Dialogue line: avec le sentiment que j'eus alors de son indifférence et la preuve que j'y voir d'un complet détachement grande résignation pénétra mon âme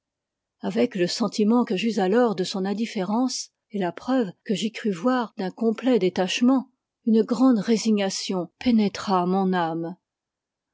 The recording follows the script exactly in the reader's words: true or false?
false